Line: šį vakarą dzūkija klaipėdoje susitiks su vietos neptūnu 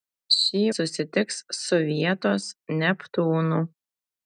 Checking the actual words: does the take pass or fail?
fail